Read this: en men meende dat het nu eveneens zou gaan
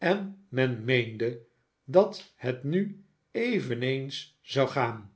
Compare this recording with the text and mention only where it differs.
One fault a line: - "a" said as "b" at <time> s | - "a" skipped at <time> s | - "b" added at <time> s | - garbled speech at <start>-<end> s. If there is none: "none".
none